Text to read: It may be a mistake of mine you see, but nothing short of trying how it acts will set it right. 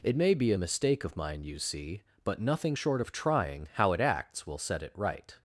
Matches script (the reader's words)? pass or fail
pass